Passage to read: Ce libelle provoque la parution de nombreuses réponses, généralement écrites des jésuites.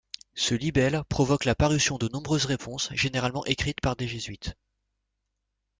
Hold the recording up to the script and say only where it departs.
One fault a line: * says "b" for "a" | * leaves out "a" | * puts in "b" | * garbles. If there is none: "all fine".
* puts in "par"